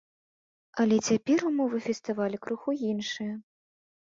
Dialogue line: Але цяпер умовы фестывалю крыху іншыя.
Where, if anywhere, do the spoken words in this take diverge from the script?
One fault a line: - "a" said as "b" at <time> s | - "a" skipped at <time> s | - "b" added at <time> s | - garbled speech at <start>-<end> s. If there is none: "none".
none